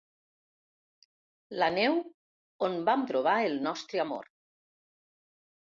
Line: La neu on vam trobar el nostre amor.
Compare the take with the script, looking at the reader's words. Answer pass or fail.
pass